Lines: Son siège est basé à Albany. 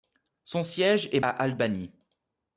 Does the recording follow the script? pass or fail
fail